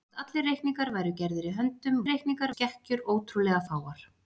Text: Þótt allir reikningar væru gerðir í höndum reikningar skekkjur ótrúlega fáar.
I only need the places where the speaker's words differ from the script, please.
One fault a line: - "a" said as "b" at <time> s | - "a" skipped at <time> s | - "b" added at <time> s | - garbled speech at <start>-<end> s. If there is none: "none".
none